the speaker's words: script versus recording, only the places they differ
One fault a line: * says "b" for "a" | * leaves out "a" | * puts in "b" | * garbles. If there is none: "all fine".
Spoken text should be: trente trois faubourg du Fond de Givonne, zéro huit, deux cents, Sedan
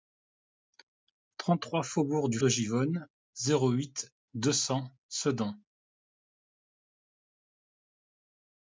* leaves out "Fond"